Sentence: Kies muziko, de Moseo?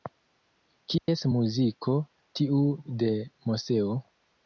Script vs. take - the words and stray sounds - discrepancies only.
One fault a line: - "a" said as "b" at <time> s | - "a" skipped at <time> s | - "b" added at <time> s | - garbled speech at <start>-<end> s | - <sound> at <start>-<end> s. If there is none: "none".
- dropout at 1.0-1.1 s
- "tiu" added at 2.4 s